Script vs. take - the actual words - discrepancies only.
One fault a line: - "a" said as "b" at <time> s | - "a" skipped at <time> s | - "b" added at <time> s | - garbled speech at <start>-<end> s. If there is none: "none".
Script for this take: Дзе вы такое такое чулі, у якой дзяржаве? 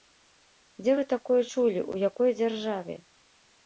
- "такое" skipped at 1.4 s